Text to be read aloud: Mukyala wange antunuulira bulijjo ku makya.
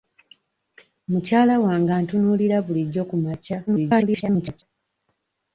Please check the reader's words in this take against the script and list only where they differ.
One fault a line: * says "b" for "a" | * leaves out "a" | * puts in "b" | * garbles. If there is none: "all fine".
* garbles